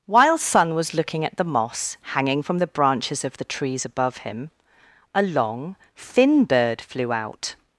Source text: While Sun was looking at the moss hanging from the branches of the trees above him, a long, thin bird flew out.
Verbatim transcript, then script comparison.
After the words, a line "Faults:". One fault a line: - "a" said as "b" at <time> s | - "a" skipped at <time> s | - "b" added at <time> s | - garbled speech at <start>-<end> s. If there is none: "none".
While Sun was looking at the moss hanging from the branches of the trees above him, a long, thin bird flew out.
Faults:
none